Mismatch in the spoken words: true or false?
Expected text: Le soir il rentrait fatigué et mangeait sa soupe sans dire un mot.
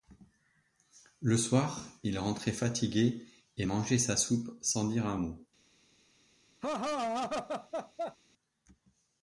false